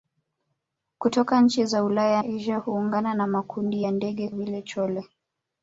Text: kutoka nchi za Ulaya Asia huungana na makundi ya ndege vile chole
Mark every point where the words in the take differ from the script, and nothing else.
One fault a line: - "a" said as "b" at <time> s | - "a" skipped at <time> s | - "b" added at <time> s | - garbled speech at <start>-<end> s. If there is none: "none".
none